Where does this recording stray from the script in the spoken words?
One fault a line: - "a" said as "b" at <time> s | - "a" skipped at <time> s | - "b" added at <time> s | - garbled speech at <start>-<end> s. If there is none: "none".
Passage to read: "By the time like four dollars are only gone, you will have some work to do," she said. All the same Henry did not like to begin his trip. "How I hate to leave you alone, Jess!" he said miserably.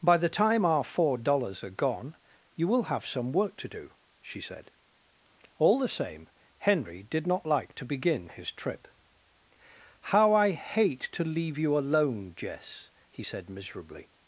- "like" said as "our" at 0.7 s
- "only" skipped at 1.7 s